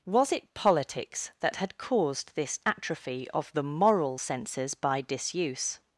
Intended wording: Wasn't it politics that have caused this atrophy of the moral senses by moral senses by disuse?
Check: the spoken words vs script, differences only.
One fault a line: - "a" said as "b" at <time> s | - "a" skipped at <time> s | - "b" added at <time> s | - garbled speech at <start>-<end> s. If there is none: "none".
- "Wasn't" said as "Was" at 0.1 s
- "have" said as "had" at 1.6 s
- "moral senses by" skipped at 5.0 s